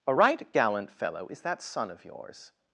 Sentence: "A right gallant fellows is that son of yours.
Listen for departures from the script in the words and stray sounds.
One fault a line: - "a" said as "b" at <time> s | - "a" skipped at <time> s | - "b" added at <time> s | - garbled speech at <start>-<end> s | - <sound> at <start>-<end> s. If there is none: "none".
- "fellows" said as "fellow" at 0.9 s